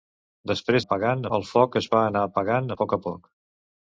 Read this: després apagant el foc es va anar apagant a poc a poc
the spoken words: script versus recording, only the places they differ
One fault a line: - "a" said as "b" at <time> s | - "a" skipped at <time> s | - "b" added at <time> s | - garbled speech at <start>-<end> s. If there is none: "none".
none